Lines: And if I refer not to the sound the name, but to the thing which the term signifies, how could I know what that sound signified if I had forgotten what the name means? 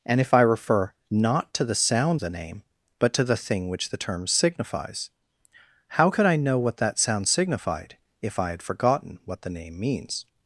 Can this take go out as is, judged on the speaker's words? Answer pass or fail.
pass